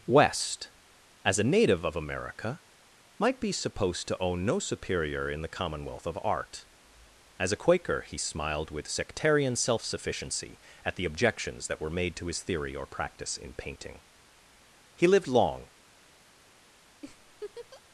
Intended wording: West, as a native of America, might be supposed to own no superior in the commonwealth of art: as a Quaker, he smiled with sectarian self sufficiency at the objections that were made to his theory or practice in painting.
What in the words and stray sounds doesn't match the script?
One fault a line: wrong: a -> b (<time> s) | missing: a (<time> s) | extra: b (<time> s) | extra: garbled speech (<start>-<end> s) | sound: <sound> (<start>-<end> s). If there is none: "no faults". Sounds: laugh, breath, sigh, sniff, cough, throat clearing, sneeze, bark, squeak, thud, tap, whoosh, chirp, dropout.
extra: He lived long (14.9 s)
sound: laugh (17.0-17.8 s)